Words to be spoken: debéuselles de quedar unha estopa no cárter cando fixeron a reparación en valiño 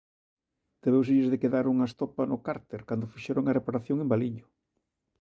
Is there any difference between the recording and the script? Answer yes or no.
no